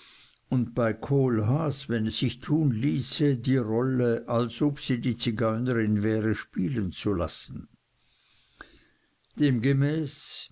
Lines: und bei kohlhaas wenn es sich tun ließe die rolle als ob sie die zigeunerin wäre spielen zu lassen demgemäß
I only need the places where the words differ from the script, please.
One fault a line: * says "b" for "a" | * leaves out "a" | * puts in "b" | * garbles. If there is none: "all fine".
all fine